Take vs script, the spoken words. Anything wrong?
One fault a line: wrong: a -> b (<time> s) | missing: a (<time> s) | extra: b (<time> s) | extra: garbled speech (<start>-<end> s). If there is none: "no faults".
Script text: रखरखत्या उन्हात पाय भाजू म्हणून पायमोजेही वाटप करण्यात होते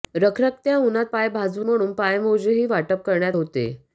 no faults